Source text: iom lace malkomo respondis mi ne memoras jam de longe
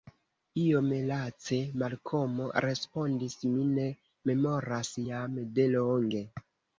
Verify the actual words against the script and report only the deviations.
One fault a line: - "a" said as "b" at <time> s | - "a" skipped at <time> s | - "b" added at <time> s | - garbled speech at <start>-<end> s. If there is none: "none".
none